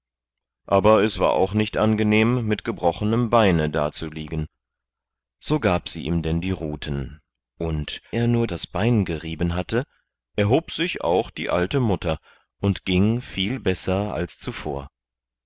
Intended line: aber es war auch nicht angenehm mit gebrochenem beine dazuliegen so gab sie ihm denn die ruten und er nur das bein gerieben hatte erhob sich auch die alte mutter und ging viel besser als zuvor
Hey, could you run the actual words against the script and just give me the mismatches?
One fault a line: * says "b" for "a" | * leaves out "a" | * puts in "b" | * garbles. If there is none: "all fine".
all fine